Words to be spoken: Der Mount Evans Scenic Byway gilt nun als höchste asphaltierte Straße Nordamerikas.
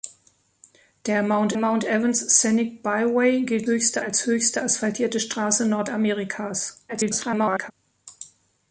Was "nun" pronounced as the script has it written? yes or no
no